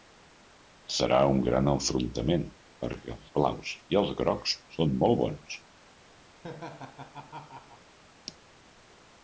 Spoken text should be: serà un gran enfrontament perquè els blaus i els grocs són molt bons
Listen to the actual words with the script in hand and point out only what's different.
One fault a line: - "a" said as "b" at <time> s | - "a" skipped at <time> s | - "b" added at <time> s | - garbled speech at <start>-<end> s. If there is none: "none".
none